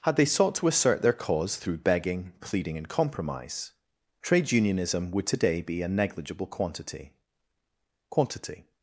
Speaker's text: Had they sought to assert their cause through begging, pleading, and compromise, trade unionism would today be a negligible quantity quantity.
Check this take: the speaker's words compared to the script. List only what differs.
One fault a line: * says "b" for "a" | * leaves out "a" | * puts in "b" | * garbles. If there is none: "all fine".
all fine